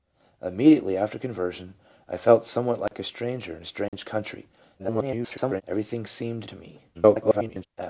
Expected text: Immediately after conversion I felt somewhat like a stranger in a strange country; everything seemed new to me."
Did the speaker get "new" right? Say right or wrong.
wrong